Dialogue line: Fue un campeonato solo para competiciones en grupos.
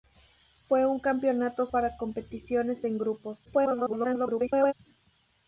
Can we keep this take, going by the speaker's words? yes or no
no